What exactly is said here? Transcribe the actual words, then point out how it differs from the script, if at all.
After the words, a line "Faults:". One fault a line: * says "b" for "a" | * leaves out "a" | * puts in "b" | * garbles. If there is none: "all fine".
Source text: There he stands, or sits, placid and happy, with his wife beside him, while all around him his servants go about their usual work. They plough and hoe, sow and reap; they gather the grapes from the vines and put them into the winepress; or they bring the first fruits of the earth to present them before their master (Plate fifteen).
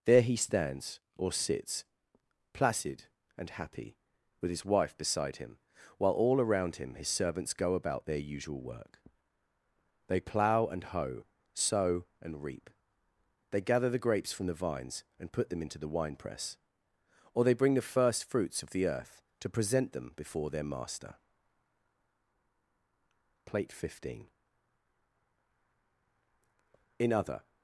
There he stands, or sits, placid and happy, with his wife beside him, while all around him his servants go about their usual work. They plough and hoe, sow and reap; they gather the grapes from the vines and put them into the winepress; or they bring the first fruits of the earth to present them before their master (Plate fifteen). In other
Faults:
* puts in "In other"